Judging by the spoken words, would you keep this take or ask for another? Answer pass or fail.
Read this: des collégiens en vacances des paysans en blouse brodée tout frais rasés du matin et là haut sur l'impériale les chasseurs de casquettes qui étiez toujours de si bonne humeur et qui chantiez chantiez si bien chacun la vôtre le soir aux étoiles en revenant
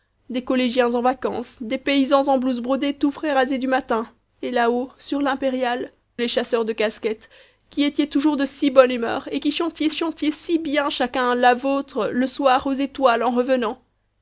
pass